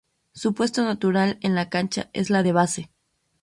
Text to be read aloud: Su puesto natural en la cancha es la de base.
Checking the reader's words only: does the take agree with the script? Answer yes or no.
yes